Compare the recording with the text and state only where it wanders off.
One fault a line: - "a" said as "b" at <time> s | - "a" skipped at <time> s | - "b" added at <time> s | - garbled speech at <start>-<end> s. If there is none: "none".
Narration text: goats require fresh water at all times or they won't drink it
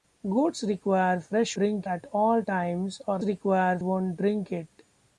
- "water" said as "drink" at 1.5 s
- "they" said as "require" at 3.2 s